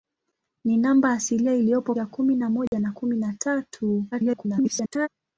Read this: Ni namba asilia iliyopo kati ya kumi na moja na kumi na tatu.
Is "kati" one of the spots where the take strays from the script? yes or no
yes